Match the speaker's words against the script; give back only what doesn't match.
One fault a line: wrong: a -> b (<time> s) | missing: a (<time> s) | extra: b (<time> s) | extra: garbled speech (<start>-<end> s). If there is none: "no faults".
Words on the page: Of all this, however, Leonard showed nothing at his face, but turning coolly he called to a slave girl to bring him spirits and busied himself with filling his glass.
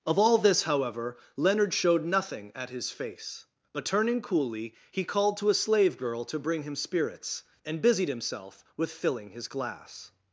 no faults